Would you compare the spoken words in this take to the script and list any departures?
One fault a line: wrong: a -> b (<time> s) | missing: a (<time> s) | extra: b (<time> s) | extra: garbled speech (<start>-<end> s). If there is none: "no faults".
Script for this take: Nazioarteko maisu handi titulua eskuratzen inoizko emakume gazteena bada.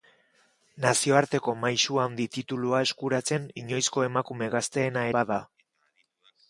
no faults